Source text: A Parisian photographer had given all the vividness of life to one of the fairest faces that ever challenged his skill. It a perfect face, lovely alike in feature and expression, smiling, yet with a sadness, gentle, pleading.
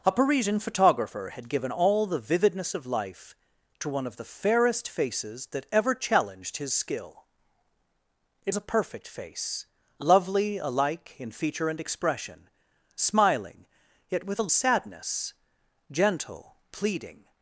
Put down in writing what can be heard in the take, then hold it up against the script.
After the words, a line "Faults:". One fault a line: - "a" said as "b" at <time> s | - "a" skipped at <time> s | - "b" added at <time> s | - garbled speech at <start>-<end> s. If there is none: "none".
A Parisian photographer had given all the vividness of life to one of the fairest faces that ever challenged his skill. It a perfect face, lovely alike in feature and expression, smiling, yet with a sadness, gentle, pleading.
Faults:
none